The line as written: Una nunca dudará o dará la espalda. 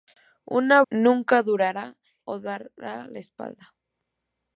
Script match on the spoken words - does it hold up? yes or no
yes